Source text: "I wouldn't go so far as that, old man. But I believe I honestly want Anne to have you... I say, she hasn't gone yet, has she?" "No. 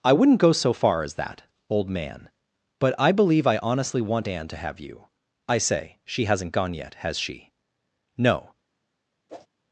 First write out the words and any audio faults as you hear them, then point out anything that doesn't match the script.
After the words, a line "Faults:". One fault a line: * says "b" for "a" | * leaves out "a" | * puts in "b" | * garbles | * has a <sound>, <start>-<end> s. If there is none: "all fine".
"I wouldn't go so far as that, old man. But I believe I honestly want Anne to have you... I say, she hasn't gone yet, has she?" "No.
Faults:
* has a whoosh, 9.3-9.5 s